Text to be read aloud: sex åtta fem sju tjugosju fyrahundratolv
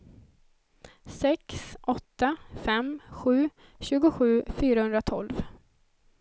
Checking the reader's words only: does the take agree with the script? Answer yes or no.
yes